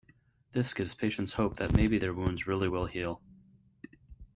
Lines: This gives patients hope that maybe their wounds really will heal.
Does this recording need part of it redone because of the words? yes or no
no